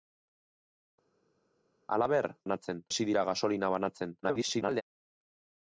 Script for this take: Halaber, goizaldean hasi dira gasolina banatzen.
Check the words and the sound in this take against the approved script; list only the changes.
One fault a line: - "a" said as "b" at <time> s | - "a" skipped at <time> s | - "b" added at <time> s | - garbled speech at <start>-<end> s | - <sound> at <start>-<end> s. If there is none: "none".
- "goizaldean" said as "banatzen" at 2.4 s
- garbled speech at 4.2-4.8 s